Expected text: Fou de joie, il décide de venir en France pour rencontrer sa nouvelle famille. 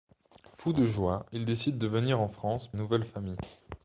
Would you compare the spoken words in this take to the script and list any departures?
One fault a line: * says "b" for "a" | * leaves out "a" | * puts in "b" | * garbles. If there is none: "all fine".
* leaves out "pour rencontrer sa"